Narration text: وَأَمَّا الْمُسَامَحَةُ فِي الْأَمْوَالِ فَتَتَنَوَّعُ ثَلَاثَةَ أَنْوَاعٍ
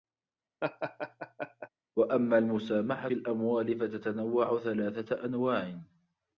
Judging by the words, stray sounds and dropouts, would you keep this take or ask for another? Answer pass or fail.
fail